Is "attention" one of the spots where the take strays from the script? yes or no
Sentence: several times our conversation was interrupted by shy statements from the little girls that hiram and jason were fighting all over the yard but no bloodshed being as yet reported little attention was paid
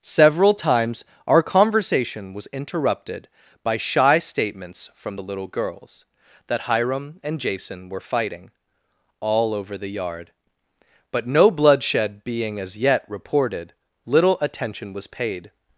no